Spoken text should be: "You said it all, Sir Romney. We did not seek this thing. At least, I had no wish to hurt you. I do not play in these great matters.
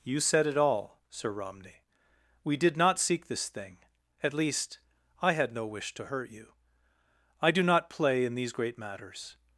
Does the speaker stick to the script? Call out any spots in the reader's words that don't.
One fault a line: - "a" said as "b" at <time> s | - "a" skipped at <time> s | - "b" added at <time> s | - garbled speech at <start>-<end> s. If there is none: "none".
none